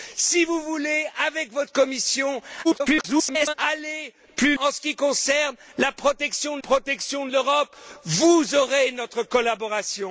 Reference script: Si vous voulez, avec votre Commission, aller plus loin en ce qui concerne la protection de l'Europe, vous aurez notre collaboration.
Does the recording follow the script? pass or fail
fail